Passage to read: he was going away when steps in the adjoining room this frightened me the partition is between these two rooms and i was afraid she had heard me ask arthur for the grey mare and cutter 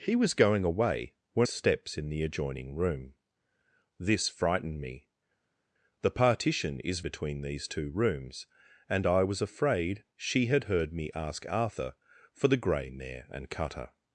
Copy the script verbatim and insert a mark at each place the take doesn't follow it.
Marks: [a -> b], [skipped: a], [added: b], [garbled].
he was going away when steps in the adjoining room this frightened me the partition is between these two rooms and i was afraid she had heard me ask arthur for the grey mare and cutter